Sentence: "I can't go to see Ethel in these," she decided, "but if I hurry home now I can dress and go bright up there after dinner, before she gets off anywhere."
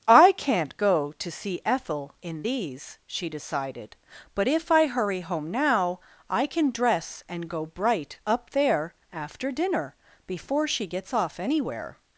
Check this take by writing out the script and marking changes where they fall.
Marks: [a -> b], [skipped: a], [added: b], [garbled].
"I can't go to see Ethel in these," she decided, "but if I hurry home now I can dress and go bright up there after dinner, before she gets off anywhere."